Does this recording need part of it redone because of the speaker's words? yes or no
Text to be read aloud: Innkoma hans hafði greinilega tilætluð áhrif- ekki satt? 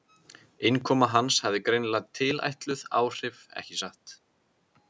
no